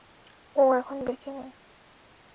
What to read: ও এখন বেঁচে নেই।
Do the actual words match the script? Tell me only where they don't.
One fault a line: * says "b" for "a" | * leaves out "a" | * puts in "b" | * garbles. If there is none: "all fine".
all fine